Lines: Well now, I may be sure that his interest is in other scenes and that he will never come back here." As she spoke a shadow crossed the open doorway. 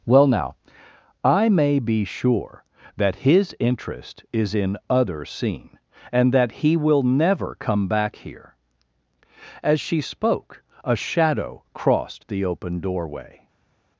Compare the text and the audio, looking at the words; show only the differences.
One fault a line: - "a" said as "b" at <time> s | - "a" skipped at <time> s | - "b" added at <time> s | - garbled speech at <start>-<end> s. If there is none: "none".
- "scenes" said as "scene" at 5.2 s